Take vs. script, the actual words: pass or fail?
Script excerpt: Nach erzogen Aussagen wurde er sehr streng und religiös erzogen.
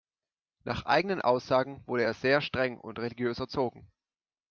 fail